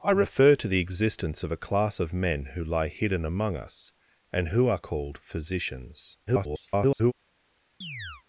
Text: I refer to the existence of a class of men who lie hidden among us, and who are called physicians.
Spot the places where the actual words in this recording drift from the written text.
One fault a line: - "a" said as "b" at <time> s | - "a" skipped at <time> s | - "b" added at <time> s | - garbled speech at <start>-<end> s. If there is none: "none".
- garbled speech at 6.3-7.1 s